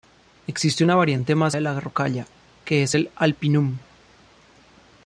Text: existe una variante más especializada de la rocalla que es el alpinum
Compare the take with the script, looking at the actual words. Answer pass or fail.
fail